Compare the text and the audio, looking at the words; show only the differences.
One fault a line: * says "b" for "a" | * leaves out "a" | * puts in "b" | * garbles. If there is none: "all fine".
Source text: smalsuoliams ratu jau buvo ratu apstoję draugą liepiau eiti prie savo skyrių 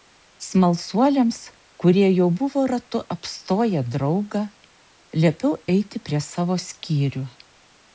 * says "kurie" for "ratu"